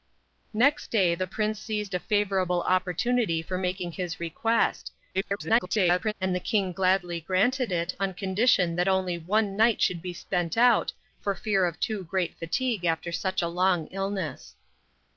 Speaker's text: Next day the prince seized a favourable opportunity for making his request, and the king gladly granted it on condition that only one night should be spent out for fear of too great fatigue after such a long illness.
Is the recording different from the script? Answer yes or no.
yes